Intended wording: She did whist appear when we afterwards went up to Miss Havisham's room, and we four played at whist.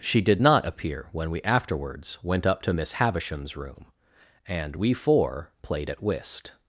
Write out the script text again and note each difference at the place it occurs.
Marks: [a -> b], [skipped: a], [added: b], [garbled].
She did [whist -> not] appear when we afterwards went up to Miss Havisham's room, and we four played at whist.